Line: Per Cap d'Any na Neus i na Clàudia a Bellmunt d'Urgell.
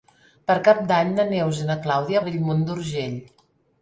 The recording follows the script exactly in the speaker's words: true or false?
true